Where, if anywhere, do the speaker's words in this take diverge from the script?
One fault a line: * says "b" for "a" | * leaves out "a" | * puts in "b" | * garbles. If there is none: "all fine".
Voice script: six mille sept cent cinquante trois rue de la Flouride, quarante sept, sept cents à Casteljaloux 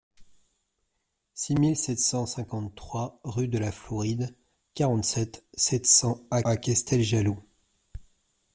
* puts in "à"